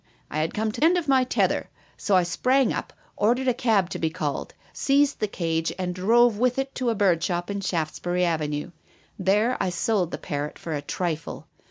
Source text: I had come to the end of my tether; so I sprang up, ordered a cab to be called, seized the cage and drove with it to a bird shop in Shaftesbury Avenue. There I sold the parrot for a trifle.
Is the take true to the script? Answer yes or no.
no